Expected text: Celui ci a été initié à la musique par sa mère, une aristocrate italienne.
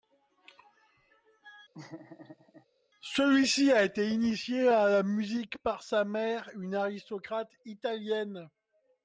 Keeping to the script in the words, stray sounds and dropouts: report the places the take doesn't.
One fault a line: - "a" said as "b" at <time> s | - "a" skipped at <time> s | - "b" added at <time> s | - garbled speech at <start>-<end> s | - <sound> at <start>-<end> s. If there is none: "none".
- laugh at 1.7-2.7 s